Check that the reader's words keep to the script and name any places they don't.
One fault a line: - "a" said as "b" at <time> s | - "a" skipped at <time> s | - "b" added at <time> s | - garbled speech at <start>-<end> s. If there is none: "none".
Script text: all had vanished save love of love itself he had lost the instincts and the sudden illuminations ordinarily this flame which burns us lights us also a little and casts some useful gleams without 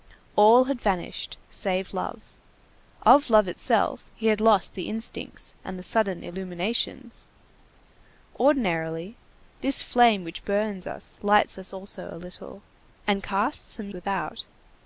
- "useful gleams" skipped at 13.9 s